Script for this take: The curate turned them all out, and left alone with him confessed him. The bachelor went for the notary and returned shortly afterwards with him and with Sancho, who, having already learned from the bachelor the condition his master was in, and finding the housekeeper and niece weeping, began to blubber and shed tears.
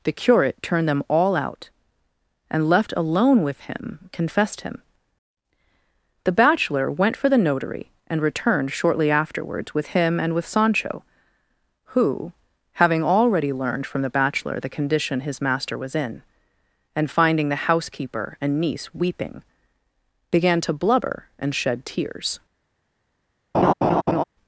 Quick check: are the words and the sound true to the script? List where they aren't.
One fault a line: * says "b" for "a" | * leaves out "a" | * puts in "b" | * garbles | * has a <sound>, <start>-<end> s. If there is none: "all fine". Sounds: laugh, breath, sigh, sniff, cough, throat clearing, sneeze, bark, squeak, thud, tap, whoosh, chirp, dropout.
* has a laugh, 23.5-24.2 s